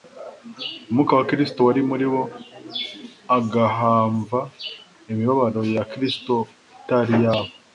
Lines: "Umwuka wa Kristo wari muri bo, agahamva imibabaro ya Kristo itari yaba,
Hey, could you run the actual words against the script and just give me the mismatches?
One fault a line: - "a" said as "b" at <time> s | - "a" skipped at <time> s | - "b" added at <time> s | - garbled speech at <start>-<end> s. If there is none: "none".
none